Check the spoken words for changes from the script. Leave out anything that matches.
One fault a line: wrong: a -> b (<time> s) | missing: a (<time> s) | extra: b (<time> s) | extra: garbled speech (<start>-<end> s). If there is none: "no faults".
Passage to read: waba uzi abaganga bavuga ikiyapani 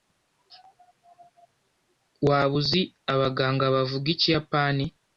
no faults